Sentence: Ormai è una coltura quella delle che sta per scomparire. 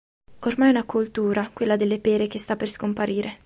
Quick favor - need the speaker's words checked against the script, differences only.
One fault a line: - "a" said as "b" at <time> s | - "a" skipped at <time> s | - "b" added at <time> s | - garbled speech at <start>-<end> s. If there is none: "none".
- "pere" added at 2.0 s